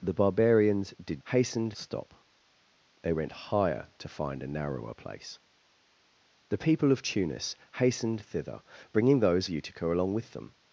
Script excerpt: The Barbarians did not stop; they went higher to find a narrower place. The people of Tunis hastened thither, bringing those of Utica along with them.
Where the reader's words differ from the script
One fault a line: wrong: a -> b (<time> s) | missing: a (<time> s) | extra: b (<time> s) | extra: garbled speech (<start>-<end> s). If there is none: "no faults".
wrong: not -> hastened (1.3 s)
missing: of (9.5 s)